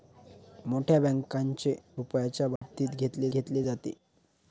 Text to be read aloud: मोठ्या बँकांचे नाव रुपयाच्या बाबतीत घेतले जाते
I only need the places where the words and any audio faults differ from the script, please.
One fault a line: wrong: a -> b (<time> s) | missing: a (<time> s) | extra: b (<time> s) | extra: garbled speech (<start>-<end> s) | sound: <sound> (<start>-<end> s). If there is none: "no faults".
missing: नाव (1.8 s)
sound: dropout (2.6-2.6 s)
extra: घेतले (3.3 s)